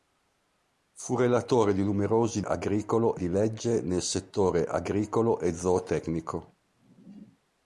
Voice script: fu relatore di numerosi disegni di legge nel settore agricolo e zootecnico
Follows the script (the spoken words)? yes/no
no